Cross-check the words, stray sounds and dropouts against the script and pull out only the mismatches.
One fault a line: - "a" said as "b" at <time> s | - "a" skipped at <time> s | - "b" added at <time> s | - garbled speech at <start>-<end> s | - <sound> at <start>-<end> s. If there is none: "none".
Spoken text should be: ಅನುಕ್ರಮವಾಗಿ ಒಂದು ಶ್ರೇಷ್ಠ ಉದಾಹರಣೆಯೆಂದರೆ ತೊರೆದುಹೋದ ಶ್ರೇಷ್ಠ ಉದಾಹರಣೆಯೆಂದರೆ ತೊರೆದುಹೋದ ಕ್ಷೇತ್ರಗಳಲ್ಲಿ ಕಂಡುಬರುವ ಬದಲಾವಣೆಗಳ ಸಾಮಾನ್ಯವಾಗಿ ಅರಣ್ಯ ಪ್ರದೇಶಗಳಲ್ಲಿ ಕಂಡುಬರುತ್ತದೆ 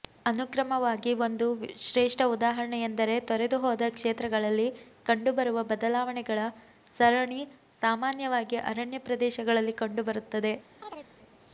- "ಶ್ರೇಷ್ಠ ಉದಾಹರಣೆಯೆಂದರೆ ತೊರೆದುಹೋದ" skipped at 3.9 s
- "ಸರಣಿ" added at 7.0 s
- chirp at 10.8-11.1 s